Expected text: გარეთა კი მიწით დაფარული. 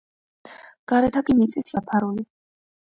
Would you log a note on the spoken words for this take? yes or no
no